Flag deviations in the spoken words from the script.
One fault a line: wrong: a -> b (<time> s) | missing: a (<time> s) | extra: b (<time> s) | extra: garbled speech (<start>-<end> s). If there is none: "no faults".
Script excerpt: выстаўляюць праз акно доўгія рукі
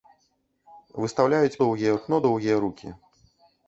wrong: праз -> доўгія (1.6 s)